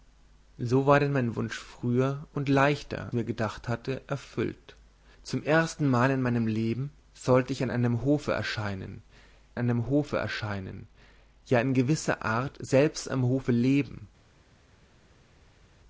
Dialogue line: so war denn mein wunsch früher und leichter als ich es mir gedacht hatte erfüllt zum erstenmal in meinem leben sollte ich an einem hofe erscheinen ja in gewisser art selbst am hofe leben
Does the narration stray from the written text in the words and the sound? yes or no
yes